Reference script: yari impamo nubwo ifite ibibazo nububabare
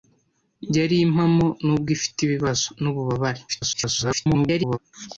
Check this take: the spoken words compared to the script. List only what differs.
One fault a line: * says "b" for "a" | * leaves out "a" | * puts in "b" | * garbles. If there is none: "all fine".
* garbles